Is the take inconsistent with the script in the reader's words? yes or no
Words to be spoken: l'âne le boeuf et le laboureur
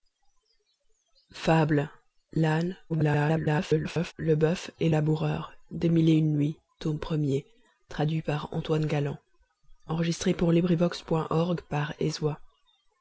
yes